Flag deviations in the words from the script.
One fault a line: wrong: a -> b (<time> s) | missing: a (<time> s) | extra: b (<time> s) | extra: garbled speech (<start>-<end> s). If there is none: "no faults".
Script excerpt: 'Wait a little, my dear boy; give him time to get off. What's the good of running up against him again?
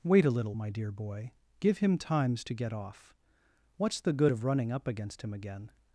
wrong: time -> times (2.0 s)